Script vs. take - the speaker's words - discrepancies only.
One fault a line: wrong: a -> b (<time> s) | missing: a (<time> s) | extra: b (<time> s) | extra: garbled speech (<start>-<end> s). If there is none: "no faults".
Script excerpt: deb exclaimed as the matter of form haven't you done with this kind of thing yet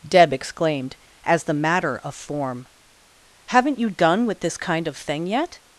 no faults